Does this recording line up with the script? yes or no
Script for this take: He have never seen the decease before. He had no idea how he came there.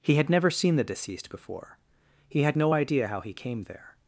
no